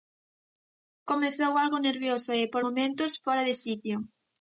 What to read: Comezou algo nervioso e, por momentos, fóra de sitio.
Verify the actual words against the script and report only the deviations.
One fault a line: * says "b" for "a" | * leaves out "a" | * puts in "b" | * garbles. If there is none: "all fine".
all fine